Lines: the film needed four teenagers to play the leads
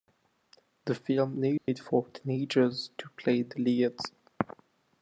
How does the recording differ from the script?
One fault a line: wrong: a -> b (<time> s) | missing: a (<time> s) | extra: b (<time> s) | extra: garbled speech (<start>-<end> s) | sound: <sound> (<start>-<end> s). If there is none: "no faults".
sound: dropout (1.6-1.7 s)